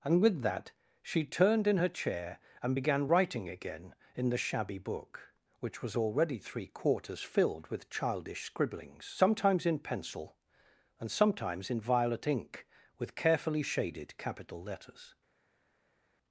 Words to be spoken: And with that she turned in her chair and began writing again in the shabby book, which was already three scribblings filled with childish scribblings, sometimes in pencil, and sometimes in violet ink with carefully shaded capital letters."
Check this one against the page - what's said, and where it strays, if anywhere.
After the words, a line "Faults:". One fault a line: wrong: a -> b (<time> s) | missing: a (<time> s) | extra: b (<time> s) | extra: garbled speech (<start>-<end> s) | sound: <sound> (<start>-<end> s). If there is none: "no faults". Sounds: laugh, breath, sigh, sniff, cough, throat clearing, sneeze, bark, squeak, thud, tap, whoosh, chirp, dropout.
And with that she turned in her chair and began writing again in the shabby book, which was already three quarters filled with childish scribblings, sometimes in pencil, and sometimes in violet ink with carefully shaded capital letters."
Faults:
wrong: scribblings -> quarters (6.7 s)